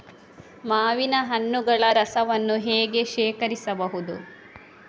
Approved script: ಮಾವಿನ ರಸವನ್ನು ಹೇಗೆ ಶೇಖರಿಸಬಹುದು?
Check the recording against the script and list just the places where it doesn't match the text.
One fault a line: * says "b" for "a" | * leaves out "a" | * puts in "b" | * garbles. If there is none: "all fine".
* puts in "ಹಣ್ಣುಗಳ"